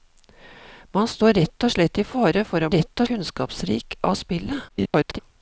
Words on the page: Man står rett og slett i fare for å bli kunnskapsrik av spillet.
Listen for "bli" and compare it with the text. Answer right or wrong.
wrong